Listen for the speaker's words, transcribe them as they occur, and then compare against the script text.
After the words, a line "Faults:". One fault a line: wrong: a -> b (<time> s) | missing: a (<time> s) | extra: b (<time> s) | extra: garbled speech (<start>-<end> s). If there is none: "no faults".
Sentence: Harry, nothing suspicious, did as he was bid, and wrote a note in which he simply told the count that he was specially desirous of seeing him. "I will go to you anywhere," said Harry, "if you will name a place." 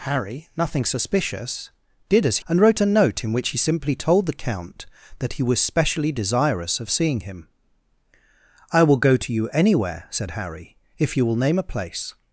Harry, nothing suspicious, did as and wrote a note in which he simply told the count that he was specially desirous of seeing him. "I will go to you anywhere," said Harry, "if you will name a place."
Faults:
missing: he was bid (2.4 s)